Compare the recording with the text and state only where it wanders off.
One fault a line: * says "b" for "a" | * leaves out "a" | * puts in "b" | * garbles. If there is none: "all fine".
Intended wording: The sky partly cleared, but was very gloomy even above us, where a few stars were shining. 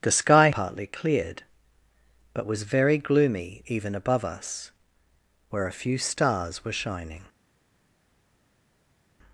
all fine